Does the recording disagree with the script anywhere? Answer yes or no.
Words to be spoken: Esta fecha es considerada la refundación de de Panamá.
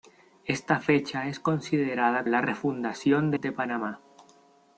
no